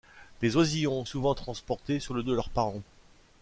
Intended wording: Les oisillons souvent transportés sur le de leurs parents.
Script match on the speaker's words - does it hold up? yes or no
yes